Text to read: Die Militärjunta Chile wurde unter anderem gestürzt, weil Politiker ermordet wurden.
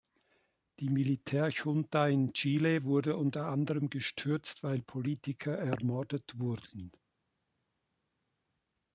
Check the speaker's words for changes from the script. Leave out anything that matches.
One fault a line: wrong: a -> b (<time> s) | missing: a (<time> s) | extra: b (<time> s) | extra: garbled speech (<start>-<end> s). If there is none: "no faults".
extra: in (2.1 s)